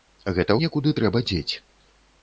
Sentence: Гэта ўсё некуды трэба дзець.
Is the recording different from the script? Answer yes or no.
yes